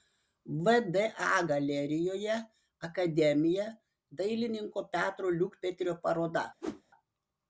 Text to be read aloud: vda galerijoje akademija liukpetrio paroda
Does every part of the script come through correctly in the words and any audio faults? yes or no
no